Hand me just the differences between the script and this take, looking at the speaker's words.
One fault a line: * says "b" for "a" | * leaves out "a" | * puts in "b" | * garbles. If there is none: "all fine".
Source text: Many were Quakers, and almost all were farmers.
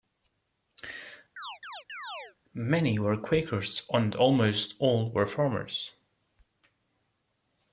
all fine